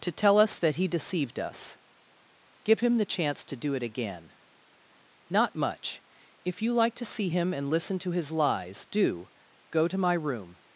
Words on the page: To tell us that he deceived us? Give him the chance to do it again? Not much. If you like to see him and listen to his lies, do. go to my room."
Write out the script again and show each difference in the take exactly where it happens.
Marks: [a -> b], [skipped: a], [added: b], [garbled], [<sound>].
To tell us that he deceived us? Give him the chance to do it again? Not much. If you like to see him and listen to his lies, do. go to my room."